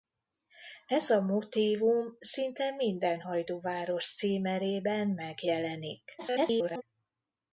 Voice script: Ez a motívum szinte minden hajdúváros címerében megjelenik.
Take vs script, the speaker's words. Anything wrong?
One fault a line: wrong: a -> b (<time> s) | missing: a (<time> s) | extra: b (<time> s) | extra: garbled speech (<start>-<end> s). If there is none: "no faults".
extra: garbled speech (6.2-6.8 s)